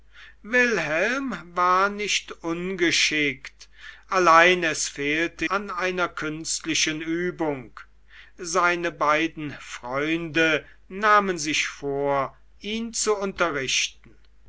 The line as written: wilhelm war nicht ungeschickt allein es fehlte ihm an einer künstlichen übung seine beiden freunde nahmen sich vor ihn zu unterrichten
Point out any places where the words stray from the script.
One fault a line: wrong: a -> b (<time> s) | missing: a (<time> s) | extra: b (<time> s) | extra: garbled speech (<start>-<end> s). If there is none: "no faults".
missing: ihm (5.5 s)